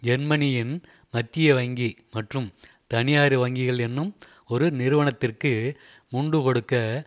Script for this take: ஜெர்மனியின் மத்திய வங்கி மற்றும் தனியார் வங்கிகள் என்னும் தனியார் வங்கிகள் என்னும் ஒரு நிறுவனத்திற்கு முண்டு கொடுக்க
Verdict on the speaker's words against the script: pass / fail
fail